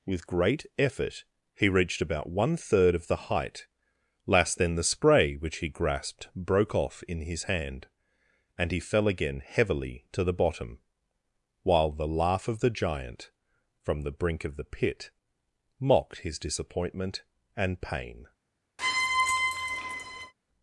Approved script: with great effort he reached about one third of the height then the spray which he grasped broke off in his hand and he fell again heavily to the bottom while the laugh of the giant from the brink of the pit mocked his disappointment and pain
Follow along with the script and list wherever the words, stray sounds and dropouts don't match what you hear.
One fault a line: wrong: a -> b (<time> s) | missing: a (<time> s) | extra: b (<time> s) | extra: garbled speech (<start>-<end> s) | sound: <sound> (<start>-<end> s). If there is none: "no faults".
extra: last (4.2 s)
sound: squeak (18.8-20.3 s)